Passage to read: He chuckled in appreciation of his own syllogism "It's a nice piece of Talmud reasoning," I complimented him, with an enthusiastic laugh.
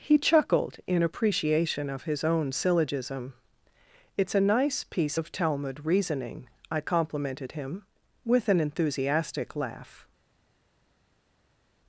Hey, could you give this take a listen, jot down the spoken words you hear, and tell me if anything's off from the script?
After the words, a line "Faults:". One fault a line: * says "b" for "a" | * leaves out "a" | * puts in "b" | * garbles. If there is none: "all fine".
He chuckled in appreciation of his own syllogism "It's a nice piece of Talmud reasoning," I complimented him, with an enthusiastic laugh.
Faults:
all fine